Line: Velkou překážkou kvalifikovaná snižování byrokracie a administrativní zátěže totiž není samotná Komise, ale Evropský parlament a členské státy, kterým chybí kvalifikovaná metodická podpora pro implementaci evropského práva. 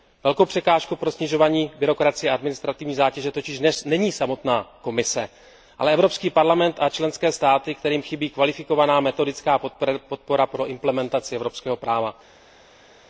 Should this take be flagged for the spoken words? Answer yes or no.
yes